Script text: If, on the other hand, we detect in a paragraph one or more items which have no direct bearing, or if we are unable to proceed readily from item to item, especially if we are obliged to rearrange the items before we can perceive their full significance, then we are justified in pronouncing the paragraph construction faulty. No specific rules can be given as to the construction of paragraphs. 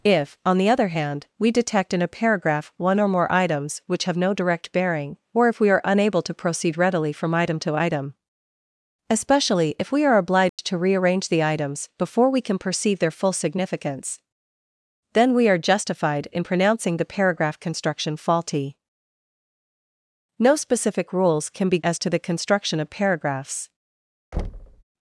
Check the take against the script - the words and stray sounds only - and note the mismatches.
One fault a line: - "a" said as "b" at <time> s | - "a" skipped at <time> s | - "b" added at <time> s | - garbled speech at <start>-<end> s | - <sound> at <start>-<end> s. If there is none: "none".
- dropout at 10.5-10.6 s
- "given" skipped at 21.8 s
- thud at 24.3-24.8 s